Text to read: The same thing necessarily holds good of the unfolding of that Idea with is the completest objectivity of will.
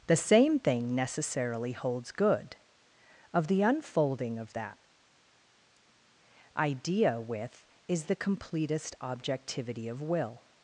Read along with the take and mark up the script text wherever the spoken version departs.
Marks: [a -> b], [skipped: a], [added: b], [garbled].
The same thing necessarily holds good of the unfolding of that Idea with is the completest objectivity of will.